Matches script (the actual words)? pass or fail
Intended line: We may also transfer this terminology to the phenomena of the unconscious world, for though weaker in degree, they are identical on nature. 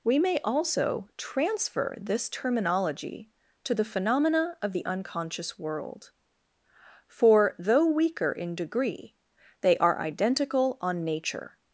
pass